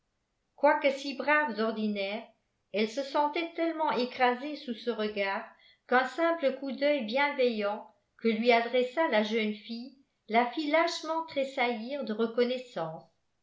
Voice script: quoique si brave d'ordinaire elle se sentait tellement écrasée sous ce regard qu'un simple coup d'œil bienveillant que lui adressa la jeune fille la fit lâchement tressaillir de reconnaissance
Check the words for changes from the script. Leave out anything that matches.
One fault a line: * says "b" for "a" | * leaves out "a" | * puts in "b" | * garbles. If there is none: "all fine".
all fine